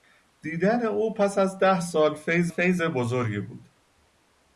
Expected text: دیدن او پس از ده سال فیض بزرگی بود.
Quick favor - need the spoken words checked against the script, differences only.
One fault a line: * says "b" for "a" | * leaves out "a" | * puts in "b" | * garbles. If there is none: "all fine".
* puts in "فیض"